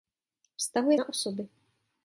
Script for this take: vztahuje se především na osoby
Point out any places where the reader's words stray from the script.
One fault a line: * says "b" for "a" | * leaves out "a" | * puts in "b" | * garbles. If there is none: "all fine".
* leaves out "se především"